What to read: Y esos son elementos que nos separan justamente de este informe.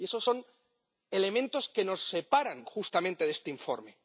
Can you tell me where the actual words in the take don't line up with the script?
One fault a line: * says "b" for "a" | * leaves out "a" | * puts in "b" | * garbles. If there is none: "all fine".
all fine